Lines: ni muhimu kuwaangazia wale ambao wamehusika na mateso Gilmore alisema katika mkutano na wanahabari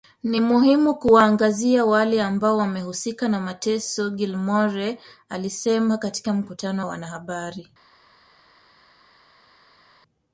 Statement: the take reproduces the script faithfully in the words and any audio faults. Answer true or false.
true